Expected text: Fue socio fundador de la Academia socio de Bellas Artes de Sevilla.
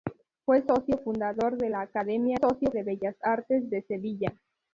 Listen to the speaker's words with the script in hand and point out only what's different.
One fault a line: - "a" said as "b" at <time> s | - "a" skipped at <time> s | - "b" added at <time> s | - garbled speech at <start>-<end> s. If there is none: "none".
none